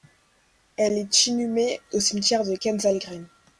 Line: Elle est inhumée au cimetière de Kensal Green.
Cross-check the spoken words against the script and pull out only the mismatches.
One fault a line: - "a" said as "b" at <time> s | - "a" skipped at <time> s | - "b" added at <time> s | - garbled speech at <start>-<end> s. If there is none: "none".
none